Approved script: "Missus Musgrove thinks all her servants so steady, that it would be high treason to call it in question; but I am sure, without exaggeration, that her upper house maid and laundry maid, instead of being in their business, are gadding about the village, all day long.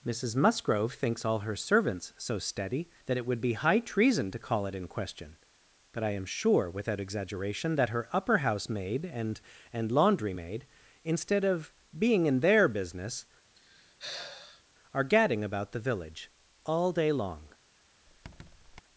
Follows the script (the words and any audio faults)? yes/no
no